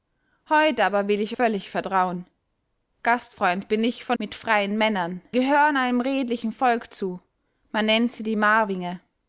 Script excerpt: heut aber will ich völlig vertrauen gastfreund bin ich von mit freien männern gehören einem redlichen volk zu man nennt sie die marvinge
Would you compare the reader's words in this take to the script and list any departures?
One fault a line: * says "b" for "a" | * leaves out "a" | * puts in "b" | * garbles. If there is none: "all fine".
all fine